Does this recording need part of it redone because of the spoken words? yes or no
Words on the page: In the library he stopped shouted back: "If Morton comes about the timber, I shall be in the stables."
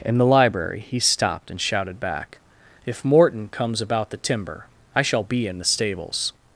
yes